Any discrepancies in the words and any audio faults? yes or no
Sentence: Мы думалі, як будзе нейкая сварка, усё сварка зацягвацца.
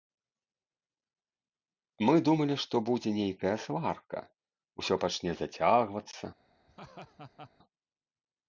yes